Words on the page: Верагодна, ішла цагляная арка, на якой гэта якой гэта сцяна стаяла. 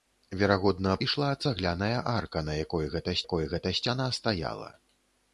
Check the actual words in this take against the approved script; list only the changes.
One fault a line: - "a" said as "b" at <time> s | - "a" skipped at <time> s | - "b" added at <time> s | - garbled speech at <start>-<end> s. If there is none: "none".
none